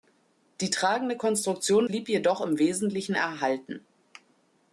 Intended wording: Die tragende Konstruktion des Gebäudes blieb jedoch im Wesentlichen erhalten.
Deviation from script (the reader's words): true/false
true